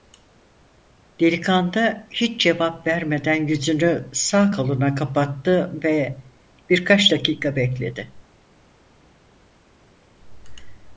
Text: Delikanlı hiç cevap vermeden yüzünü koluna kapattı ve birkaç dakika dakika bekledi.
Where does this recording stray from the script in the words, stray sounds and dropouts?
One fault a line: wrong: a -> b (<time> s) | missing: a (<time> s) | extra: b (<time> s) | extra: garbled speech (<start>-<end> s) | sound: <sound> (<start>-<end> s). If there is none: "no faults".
extra: sağ (4.1 s)
missing: dakika (7.6 s)